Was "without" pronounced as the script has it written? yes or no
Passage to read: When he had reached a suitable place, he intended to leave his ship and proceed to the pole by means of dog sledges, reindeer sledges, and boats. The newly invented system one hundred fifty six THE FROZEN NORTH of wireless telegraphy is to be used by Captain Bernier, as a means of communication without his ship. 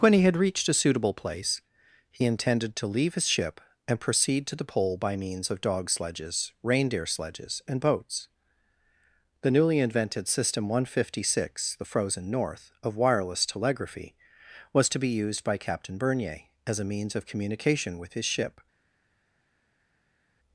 no